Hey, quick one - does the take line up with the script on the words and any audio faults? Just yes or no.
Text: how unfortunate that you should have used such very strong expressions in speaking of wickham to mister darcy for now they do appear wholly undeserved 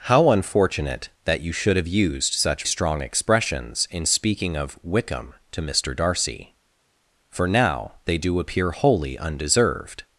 no